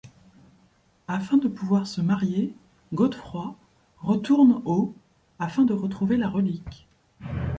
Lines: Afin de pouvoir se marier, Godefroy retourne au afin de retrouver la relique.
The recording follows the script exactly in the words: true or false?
true